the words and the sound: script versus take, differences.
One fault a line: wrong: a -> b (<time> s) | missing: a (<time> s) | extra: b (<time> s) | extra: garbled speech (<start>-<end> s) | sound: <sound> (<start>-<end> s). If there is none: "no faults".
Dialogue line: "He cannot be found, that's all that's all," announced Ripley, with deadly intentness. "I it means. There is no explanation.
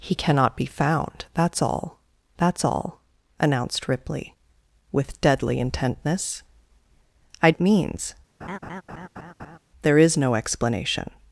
sound: laugh (8.4-9.6 s)